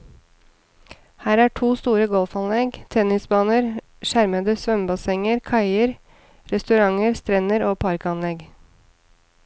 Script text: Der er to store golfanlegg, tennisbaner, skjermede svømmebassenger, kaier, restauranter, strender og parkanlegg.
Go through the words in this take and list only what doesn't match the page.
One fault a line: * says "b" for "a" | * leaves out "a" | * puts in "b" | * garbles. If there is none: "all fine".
* says "Her" for "Der"